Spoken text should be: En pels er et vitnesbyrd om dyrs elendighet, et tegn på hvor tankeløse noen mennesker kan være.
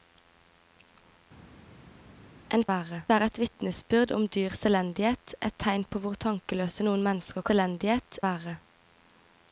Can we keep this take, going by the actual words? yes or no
no